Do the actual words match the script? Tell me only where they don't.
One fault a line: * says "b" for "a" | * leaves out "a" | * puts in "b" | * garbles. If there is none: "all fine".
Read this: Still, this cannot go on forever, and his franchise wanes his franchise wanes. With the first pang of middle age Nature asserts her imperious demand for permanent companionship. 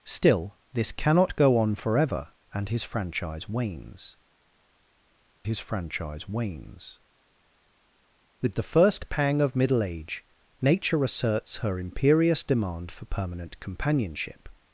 all fine